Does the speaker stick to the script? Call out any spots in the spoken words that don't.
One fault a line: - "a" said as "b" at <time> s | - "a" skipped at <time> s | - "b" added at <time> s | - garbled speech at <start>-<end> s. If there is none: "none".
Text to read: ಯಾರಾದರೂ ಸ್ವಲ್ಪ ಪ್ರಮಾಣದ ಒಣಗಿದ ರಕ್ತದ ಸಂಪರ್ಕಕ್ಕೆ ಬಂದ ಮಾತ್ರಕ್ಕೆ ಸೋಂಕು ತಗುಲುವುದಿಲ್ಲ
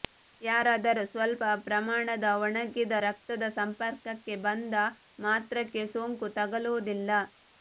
none